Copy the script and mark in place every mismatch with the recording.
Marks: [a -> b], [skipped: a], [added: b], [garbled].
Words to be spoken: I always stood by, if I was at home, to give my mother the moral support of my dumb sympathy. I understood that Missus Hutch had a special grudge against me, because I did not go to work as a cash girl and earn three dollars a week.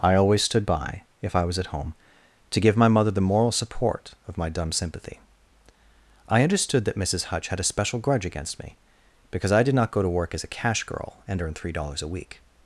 I always stood by, if I was at home, to give my mother the moral support of my dumb sympathy. I understood that Missus Hutch had a special grudge against me, because I did not go to work as a cash girl and earn three dollars a week.